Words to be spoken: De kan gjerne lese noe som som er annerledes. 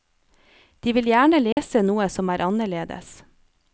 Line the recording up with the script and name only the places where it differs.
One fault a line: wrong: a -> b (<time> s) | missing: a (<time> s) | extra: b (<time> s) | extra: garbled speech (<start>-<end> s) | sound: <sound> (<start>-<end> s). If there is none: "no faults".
wrong: kan -> vil (1.0 s)
sound: dropout (1.5-1.6 s)
missing: som (2.3 s)